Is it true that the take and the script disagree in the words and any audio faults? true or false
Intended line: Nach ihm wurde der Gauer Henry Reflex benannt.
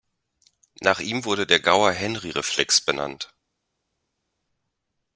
false